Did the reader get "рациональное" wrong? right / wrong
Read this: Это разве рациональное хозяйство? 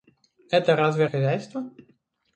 wrong